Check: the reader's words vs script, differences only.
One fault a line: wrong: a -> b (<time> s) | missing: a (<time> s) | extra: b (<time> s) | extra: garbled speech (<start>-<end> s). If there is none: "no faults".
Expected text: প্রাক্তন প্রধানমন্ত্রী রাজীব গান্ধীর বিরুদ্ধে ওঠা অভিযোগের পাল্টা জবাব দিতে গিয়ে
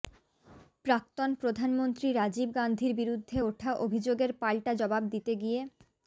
no faults